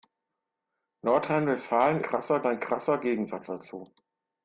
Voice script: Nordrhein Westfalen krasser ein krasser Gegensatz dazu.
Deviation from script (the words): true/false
false